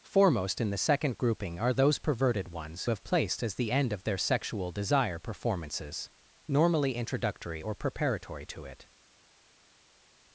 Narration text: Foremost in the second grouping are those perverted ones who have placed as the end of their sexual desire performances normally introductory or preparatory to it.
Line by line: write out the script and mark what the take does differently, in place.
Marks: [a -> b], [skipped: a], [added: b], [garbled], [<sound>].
Foremost in the second grouping are those perverted ones [skipped: who] have placed as the end of their sexual desire performances normally introductory or preparatory to it.